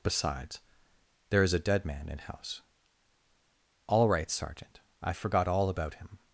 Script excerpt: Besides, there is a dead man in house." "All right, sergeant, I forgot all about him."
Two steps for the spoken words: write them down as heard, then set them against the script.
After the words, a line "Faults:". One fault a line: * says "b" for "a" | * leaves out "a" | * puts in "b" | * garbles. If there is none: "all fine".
Besides, there is a dead man in house." "All right, sergeant, I forgot all about him."
Faults:
all fine